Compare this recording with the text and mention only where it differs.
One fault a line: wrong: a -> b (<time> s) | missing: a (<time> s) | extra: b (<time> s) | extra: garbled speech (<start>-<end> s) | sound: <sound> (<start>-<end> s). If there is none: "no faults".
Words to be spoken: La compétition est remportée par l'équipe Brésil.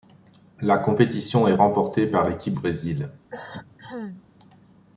sound: cough (3.3-4.2 s)